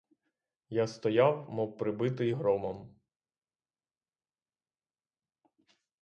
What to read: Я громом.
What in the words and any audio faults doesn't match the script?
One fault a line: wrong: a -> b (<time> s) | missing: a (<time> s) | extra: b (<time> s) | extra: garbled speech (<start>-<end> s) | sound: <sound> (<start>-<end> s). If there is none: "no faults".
extra: стояв мов прибитий (0.9 s)